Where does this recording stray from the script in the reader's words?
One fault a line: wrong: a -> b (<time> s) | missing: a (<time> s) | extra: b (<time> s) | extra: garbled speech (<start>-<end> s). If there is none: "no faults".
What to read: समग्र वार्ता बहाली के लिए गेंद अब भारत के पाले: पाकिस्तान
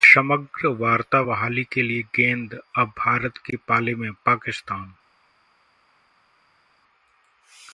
extra: में (3.9 s)